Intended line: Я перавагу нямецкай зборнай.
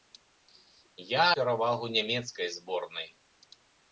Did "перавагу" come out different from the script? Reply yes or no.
no